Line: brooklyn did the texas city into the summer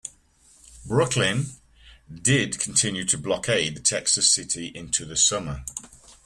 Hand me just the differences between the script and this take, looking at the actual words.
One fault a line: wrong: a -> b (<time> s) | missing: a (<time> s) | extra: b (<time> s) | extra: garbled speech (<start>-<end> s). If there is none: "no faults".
extra: continue to blockade (2.6 s)